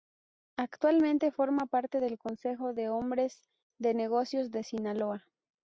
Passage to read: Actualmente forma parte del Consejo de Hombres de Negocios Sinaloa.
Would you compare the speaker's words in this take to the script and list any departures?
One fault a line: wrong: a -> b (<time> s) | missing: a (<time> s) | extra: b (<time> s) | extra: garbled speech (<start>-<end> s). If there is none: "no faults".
extra: de (4.5 s)